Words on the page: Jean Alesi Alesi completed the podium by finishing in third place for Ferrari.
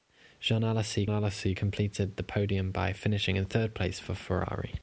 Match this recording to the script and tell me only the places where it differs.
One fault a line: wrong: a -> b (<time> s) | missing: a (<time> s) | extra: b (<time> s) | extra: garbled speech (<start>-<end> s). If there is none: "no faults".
no faults